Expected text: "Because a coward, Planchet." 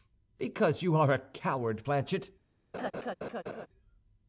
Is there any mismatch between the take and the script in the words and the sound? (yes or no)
yes